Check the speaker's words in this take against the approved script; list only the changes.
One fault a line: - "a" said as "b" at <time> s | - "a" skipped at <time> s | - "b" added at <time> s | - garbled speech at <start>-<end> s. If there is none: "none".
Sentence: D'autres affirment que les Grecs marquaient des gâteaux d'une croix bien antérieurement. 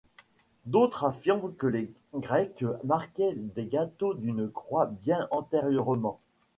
none